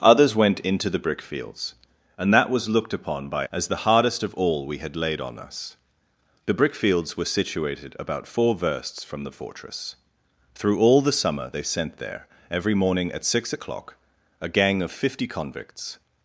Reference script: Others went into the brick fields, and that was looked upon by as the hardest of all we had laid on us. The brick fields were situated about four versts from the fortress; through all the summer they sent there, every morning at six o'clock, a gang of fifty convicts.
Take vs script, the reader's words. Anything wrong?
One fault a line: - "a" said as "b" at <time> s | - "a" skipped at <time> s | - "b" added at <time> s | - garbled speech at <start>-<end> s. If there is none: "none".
none